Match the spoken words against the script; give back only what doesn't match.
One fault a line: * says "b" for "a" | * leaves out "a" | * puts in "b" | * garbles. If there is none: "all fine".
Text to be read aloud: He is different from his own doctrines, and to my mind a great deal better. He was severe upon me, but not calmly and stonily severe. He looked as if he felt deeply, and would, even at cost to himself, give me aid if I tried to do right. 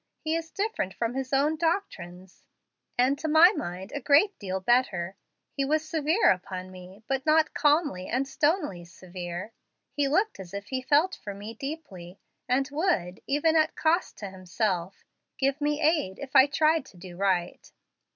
* puts in "for me"